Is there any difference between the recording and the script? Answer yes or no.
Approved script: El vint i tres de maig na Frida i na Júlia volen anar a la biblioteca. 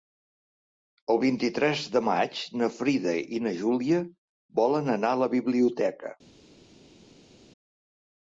no